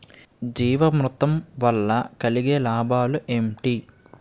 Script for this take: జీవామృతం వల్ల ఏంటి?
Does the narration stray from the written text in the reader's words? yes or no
yes